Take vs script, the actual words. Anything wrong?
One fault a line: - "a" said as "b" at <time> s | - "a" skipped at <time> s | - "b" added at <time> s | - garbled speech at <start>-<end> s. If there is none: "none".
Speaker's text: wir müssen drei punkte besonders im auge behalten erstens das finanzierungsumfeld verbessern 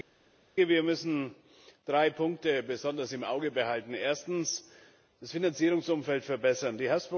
none